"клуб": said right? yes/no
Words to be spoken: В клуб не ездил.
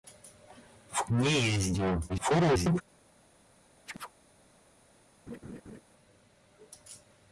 no